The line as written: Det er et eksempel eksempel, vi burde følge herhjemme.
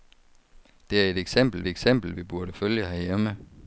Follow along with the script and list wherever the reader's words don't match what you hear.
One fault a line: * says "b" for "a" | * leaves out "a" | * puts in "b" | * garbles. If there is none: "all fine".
all fine